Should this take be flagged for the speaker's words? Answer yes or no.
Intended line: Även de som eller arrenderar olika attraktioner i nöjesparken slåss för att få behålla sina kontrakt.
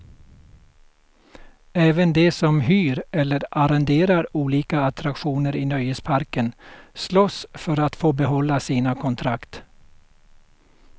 yes